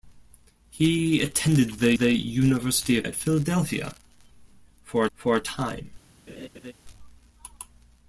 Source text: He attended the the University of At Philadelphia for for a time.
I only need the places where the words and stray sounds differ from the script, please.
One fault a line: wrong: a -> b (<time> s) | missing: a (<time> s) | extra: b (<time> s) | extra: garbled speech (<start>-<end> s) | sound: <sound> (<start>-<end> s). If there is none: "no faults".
sound: laugh (6.3-6.7 s)